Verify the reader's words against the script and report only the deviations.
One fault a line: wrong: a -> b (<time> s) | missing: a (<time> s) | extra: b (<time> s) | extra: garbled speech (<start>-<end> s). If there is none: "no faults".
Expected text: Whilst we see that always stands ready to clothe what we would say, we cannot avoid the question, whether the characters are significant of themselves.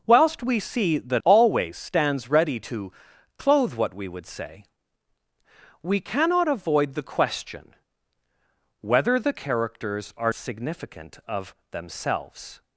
no faults